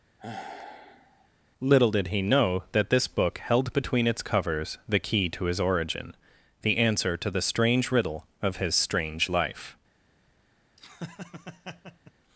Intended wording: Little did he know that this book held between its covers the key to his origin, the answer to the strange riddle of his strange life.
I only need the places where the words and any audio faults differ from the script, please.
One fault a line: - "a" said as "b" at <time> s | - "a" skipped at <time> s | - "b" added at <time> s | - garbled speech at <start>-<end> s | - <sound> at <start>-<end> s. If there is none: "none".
- sigh at 0.2-1.3 s
- laugh at 10.8-12.1 s